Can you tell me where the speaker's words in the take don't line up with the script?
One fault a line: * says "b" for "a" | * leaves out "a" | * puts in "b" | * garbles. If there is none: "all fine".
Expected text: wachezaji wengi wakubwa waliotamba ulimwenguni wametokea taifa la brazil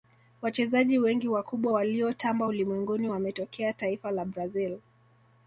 all fine